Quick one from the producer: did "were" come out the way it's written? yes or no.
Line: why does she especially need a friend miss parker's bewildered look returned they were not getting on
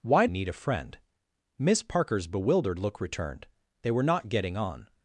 yes